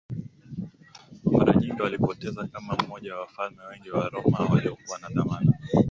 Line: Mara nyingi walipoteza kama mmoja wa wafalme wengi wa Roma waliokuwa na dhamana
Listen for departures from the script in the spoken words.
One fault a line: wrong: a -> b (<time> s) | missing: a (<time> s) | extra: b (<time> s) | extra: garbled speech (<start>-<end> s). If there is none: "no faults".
no faults